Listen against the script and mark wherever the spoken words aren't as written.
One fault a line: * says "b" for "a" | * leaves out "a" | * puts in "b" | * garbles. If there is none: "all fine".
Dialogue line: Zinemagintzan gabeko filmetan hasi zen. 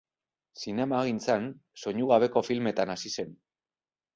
* puts in "soinu"